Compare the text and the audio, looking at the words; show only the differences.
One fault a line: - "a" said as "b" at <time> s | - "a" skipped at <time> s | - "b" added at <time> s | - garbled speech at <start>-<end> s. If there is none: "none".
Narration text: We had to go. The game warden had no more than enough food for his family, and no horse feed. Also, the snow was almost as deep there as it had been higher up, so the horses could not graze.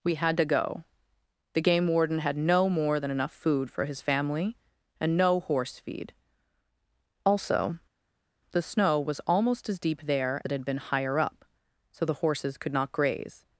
- "as" skipped at 10.4 s